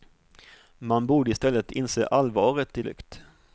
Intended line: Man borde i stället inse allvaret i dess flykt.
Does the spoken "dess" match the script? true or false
false